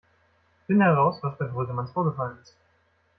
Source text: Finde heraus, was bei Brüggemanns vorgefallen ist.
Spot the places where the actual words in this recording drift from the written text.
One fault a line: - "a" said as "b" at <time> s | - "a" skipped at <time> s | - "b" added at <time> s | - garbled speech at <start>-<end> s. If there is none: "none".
none